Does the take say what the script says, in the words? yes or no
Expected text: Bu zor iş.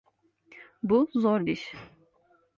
yes